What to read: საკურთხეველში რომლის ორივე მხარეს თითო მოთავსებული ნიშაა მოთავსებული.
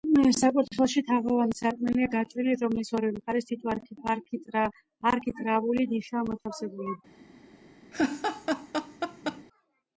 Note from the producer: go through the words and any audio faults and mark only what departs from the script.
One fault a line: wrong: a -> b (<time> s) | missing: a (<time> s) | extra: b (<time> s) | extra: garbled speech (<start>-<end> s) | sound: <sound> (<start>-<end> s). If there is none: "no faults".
extra: თაღოვანი სარკმელია გაჭრილი (1.1 s)
wrong: მოთავსებული -> არქიტრავული (5.1 s)
sound: laugh (7.9-9.4 s)